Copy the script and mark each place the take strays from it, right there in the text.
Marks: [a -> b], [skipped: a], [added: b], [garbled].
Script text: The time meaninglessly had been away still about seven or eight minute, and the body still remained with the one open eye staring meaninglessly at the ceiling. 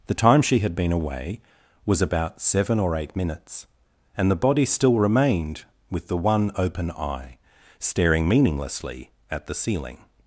The time [meaninglessly -> she] had been away [still -> was] about seven or eight [minute, -> minutes] and the body still remained with the one open eye staring meaninglessly at the ceiling.